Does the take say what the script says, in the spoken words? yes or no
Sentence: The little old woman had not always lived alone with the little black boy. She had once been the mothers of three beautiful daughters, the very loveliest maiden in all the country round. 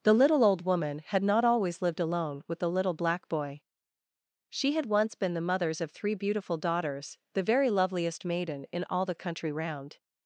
yes